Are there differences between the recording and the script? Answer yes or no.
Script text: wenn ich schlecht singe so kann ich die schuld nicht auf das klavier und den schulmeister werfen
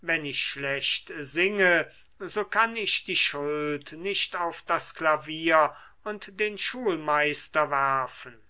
no